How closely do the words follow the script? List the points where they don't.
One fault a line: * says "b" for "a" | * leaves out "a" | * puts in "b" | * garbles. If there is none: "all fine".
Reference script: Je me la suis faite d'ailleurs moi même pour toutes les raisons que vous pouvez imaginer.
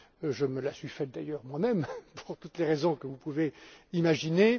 all fine